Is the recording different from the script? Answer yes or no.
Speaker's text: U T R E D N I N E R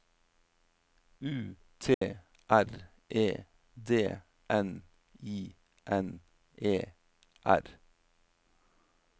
no